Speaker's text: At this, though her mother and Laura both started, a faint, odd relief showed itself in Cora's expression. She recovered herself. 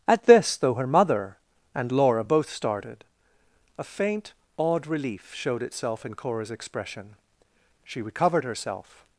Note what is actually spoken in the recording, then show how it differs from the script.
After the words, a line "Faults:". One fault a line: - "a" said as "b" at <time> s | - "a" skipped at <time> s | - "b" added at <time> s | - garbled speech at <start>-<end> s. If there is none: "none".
At this, though her mother and Laura both started, a faint, odd relief showed itself in Cora's expression. She recovered herself.
Faults:
none